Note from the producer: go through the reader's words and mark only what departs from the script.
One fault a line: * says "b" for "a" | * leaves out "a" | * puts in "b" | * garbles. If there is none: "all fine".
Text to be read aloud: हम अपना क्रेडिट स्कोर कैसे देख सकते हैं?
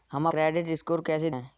* leaves out "अपना"
* leaves out "देख सकते"